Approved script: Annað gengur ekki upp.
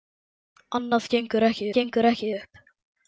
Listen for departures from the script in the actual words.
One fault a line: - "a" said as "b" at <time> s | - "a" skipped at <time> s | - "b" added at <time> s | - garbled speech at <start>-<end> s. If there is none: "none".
- "gengur ekki" added at 1.8 s